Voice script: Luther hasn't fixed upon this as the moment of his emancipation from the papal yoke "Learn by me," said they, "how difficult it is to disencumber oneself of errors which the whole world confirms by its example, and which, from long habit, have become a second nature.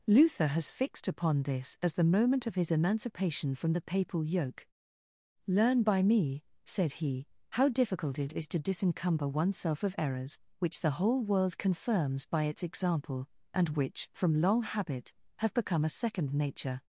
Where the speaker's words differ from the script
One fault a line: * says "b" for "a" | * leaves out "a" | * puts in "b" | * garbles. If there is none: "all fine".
* says "has" for "hasn't"
* says "he" for "they"